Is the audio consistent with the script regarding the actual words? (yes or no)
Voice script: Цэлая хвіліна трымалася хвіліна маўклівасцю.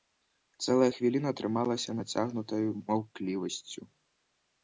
no